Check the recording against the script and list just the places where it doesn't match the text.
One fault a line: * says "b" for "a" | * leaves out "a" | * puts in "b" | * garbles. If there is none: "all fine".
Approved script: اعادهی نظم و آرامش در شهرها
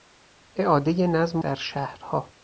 * leaves out "و آرامش"